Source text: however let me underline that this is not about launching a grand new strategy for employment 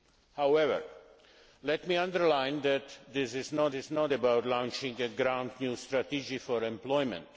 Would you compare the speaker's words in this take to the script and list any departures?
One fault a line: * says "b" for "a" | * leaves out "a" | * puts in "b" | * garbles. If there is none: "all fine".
* puts in "is not"